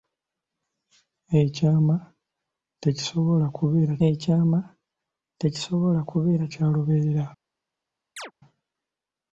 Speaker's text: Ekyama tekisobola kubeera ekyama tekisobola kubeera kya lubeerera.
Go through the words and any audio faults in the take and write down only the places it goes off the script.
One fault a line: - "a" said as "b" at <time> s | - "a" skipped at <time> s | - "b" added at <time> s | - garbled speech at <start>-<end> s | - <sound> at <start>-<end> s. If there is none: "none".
- chirp at 8.2-8.3 s